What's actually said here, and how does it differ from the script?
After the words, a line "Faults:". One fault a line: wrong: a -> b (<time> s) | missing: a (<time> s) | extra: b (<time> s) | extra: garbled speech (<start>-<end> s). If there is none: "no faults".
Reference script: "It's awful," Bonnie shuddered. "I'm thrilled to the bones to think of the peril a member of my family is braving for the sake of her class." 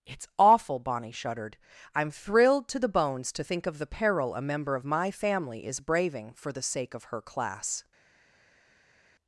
"It's awful," Bonnie shuddered. "I'm thrilled to the bones to think of the peril a member of my family is braving for the sake of her class."
Faults:
no faults